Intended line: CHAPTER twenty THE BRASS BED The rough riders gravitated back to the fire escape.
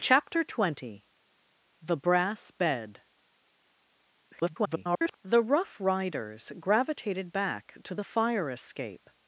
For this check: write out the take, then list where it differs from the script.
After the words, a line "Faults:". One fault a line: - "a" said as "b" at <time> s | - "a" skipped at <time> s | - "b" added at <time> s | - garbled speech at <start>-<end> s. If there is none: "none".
CHAPTER twenty THE BRASS BED [garbled] The rough riders gravitated back to the fire escape.
Faults:
- garbled speech at 4.3-5.2 s